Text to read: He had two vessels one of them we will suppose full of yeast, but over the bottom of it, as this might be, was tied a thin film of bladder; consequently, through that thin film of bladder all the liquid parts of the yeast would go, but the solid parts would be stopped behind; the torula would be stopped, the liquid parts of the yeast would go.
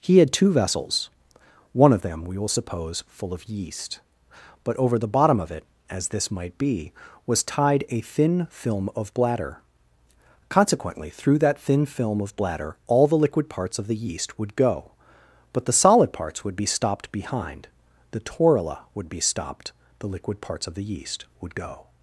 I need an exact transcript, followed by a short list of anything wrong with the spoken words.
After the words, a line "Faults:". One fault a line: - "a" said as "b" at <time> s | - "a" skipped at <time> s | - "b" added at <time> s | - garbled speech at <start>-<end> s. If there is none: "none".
He had two vessels one of them we will suppose full of yeast, but over the bottom of it, as this might be, was tied a thin film of bladder; consequently, through that thin film of bladder all the liquid parts of the yeast would go, but the solid parts would be stopped behind; the torula would be stopped, the liquid parts of the yeast would go.
Faults:
none